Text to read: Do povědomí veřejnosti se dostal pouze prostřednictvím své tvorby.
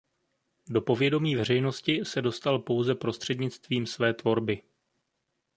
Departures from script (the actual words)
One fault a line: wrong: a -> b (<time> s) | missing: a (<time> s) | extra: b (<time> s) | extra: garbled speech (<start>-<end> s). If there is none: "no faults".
no faults